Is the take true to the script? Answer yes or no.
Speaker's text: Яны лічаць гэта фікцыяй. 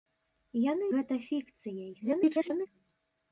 no